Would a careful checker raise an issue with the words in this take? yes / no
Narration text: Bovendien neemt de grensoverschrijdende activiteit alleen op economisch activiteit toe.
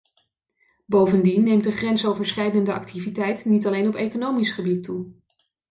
yes